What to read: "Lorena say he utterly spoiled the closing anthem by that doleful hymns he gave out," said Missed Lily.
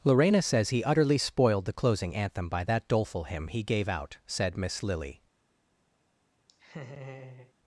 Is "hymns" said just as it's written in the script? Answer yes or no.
no